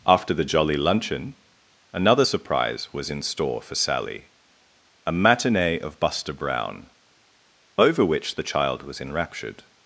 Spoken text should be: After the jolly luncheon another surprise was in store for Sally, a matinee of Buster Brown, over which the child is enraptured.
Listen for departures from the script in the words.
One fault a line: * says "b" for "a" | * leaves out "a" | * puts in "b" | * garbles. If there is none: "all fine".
* says "was" for "is"